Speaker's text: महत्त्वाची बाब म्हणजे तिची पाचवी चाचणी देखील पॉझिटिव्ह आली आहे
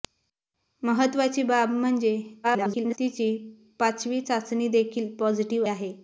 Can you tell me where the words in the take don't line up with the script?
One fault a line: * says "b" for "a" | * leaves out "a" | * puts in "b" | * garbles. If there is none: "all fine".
* garbles
* leaves out "आली"